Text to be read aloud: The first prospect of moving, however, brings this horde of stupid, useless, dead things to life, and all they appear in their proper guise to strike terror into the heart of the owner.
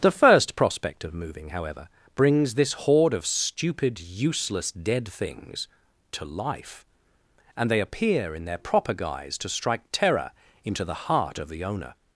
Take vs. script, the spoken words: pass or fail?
fail